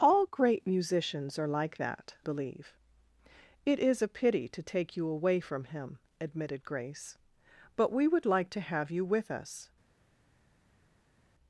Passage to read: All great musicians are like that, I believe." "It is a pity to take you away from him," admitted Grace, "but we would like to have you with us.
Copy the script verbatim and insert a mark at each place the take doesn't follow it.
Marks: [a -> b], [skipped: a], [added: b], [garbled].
All great musicians are like that, [skipped: I] believe." "It is a pity to take you away from him," admitted Grace, "but we would like to have you with us.